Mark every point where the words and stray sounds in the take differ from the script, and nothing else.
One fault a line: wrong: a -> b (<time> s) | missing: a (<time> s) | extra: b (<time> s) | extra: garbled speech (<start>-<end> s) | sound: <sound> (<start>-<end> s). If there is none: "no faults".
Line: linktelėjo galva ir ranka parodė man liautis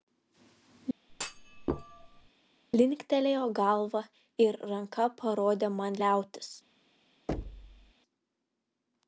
sound: thud (1.1-2.3 s)
sound: thud (7.3-7.9 s)